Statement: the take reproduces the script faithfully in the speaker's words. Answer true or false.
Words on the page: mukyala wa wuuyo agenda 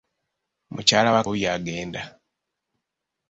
true